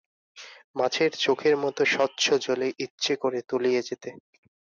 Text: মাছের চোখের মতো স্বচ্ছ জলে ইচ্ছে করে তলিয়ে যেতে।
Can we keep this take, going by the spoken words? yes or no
yes